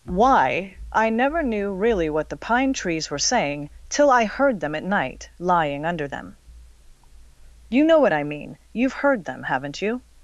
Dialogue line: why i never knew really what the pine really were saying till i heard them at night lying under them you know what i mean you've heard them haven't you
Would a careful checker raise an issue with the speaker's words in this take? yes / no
yes